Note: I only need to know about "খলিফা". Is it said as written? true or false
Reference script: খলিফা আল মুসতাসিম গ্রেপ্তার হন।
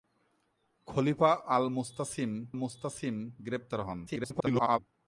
true